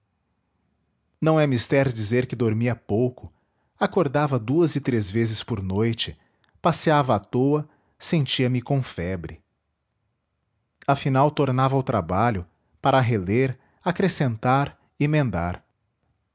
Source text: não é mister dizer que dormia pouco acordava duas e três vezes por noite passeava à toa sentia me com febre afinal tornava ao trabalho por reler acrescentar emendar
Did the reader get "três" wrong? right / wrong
right